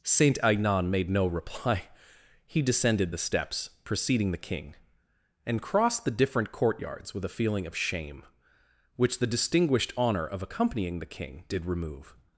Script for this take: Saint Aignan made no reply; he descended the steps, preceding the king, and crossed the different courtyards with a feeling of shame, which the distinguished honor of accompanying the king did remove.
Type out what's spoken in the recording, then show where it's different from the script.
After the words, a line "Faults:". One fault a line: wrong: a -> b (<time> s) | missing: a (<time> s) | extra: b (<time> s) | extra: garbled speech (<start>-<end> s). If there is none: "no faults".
Saint Aignan made no reply; he descended the steps, preceding the king, and crossed the different courtyards with a feeling of shame, which the distinguished honor of accompanying the king did remove.
Faults:
no faults